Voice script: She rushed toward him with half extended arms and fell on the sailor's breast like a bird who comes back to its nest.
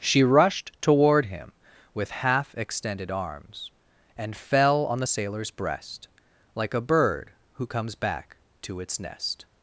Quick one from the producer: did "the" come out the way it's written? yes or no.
yes